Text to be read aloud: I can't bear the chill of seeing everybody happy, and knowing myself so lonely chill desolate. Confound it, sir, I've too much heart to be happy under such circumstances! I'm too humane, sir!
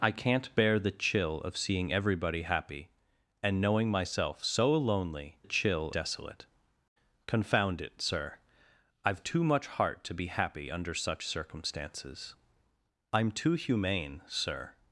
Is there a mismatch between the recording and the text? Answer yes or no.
no